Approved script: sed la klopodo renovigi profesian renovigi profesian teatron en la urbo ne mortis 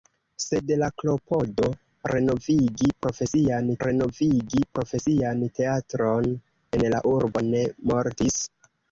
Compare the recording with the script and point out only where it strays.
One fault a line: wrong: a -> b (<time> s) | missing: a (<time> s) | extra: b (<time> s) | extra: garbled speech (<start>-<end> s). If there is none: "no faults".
no faults